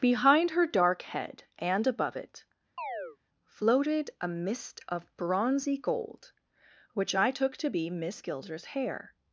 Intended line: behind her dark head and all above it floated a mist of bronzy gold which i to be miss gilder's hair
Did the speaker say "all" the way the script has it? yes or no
no